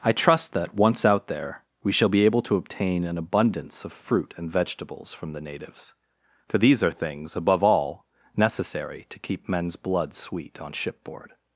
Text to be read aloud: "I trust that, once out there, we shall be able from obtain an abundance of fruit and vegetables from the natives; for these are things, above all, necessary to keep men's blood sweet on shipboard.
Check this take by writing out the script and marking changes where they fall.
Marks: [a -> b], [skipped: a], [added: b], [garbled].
"I trust that, once out there, we shall be able [from -> to] obtain an abundance of fruit and vegetables from the natives; for these are things, above all, necessary to keep men's blood sweet on shipboard.